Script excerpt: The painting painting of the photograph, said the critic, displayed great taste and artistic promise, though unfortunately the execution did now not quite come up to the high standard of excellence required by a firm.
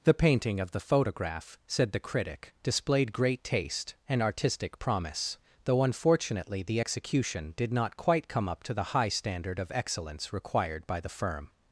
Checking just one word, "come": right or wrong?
right